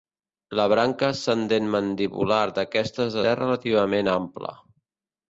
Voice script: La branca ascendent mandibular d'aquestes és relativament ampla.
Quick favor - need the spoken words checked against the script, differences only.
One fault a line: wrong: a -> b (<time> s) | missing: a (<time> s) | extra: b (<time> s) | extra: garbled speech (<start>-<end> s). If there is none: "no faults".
no faults